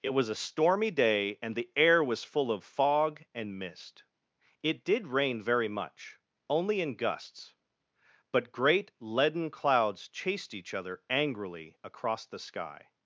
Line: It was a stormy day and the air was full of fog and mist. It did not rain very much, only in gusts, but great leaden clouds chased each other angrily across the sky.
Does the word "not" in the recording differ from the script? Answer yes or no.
yes